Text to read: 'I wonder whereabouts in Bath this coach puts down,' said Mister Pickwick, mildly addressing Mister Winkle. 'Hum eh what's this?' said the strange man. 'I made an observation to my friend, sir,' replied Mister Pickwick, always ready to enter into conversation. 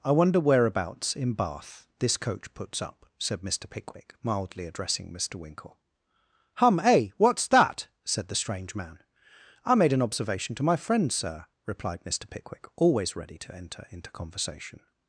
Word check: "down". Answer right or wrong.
wrong